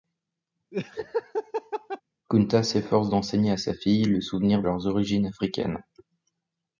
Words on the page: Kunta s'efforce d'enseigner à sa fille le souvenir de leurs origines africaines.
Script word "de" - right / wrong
wrong